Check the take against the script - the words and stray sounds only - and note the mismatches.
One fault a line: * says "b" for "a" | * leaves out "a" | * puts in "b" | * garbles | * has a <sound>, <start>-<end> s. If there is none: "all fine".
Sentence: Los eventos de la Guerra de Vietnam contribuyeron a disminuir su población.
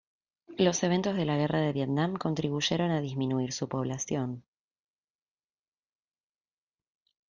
all fine